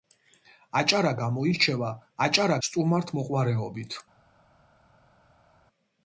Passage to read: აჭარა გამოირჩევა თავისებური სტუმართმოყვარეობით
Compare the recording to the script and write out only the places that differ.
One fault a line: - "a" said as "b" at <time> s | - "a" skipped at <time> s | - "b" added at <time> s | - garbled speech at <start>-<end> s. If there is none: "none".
- "თავისებური" said as "აჭარა" at 2.2 s